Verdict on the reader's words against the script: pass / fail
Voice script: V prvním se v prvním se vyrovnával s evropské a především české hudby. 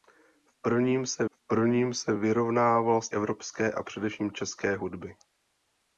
pass